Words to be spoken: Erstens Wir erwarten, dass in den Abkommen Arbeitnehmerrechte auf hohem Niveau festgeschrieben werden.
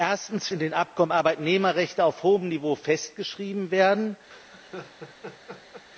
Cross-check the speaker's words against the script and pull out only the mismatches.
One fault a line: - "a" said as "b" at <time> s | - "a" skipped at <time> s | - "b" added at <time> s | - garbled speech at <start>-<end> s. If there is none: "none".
- "Wir erwarten dass" skipped at 0.5 s